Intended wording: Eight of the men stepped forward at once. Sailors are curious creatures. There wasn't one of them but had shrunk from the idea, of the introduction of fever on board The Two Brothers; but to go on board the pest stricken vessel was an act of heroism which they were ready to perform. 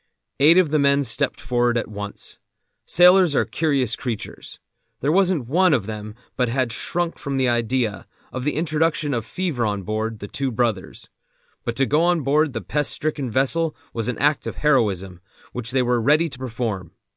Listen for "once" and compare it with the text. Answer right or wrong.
right